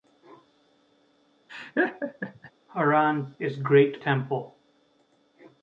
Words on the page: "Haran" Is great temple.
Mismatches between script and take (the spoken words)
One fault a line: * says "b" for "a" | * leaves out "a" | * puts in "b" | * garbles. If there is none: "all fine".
all fine